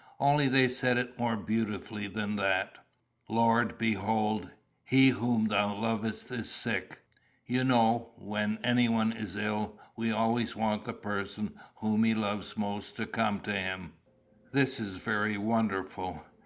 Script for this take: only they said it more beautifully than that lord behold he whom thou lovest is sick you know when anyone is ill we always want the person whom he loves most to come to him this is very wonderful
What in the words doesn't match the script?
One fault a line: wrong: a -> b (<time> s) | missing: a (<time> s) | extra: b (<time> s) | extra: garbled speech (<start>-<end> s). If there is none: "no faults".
no faults